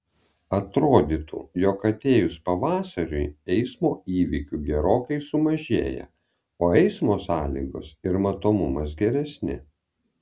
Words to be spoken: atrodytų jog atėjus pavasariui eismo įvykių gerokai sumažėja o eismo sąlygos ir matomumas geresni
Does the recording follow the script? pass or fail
pass